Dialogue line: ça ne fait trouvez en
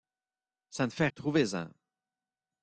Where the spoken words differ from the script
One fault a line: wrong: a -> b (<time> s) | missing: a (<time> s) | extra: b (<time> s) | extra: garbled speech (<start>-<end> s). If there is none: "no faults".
no faults